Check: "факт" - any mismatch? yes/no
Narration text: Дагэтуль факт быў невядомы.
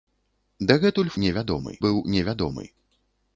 yes